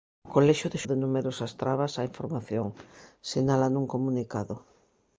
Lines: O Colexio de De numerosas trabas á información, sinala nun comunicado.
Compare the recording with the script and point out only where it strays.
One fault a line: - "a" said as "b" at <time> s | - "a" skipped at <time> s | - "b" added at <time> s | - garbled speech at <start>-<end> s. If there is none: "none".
none